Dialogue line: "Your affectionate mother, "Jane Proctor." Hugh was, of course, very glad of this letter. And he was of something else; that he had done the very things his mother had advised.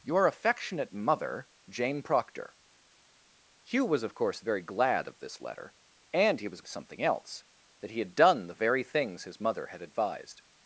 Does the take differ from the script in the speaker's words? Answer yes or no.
no